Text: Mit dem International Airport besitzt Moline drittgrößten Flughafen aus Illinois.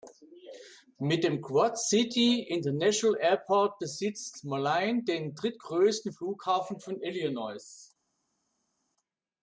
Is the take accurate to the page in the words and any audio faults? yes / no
no